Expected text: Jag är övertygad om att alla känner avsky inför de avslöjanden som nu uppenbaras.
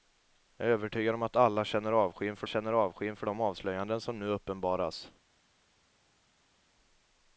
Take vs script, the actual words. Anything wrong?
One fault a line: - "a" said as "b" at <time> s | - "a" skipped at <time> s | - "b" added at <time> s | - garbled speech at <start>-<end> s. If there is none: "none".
- "känner avsky inför" added at 2.5 s